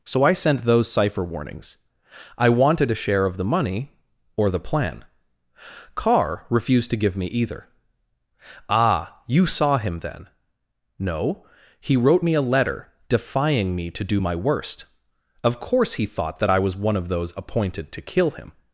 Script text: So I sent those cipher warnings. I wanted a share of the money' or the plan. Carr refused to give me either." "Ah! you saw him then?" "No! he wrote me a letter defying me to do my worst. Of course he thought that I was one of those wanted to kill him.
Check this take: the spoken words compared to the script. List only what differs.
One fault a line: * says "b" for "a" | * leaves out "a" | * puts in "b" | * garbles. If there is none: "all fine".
* says "appointed" for "wanted"